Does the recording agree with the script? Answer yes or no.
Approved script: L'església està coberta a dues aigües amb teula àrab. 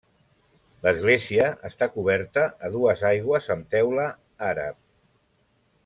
yes